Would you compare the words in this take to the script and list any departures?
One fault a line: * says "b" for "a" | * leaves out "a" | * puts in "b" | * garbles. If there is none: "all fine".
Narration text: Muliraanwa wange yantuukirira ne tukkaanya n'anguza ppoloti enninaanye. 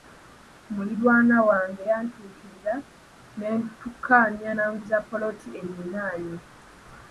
all fine